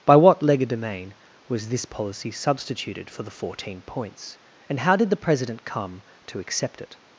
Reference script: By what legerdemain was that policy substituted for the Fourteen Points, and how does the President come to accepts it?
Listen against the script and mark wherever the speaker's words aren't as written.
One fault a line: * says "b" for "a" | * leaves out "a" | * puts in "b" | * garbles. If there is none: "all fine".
* says "this" for "that"
* says "did" for "does"
* says "accept" for "accepts"